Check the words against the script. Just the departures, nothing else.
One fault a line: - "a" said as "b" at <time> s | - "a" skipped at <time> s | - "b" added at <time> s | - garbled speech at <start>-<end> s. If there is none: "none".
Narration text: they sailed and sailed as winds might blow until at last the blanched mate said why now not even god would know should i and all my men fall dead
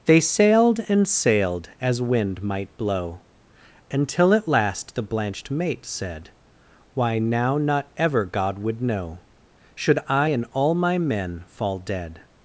- "winds" said as "wind" at 2.0 s
- "even" said as "ever" at 8.0 s